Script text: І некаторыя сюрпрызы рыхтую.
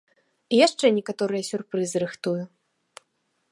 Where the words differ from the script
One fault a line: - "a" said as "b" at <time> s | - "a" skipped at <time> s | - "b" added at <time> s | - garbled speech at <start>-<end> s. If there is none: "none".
- "яшчэ" added at 0.7 s